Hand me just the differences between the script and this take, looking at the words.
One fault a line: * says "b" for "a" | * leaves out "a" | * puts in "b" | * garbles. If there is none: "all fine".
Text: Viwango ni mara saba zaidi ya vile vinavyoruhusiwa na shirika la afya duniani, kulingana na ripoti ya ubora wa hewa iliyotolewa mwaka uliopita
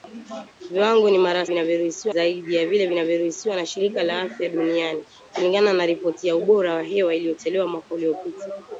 * says "vinavyoruhusiwa" for "saba"